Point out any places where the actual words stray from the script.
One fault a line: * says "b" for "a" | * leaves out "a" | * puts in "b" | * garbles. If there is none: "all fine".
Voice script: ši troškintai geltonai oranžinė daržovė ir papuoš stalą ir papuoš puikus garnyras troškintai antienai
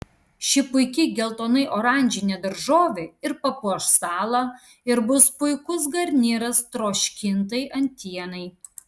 * says "puiki" for "troškintai"
* says "bus" for "papuoš"